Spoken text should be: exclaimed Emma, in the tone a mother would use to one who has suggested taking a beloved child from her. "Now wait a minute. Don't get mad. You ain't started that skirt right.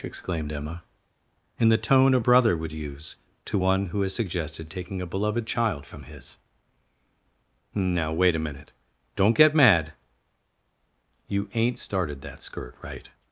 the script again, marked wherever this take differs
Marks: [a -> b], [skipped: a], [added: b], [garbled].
exclaimed Emma, in the tone a [mother -> brother] would use to one who has suggested taking a beloved child from [her. -> his] "Now wait a minute. Don't get mad. You ain't started that skirt right.